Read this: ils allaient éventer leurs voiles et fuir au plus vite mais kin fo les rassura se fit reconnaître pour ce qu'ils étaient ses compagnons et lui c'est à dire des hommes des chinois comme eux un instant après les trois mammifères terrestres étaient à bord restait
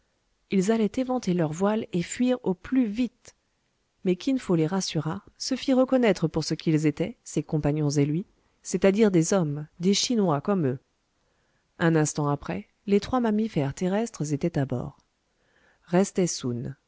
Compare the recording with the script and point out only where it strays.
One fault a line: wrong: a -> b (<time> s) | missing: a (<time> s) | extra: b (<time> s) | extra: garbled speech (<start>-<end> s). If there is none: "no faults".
no faults